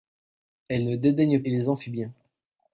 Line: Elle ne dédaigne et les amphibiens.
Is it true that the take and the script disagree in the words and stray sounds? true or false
false